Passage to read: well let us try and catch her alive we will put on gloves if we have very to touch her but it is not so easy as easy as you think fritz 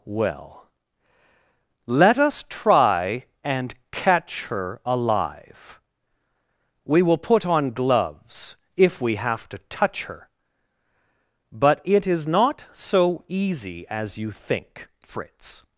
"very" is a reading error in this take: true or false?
true